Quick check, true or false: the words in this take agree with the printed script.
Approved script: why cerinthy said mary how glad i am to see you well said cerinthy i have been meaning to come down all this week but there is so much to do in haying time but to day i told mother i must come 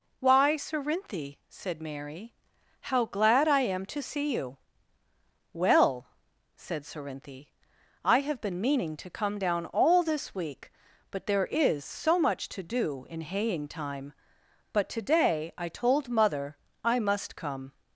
true